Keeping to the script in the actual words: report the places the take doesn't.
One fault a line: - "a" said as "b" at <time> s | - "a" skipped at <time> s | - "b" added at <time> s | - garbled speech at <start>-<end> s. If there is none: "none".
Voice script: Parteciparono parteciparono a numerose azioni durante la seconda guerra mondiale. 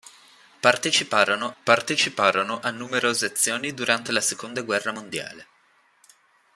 none